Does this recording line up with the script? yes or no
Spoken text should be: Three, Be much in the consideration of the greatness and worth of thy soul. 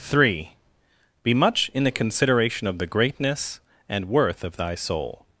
yes